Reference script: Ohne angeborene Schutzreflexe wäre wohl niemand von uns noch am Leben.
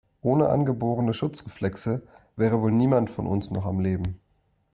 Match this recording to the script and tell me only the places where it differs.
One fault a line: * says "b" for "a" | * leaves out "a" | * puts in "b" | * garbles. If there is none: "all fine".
all fine